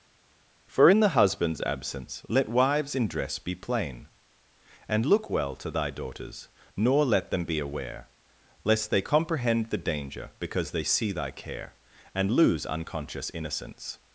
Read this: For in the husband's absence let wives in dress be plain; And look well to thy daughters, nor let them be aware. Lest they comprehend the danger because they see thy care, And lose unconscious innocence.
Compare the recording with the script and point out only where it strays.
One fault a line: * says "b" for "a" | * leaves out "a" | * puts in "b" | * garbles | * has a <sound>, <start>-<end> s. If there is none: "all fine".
all fine